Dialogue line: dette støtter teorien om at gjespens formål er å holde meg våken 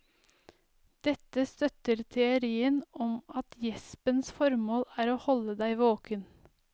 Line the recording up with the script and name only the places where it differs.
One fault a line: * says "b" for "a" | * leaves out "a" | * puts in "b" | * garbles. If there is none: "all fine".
* says "deg" for "meg"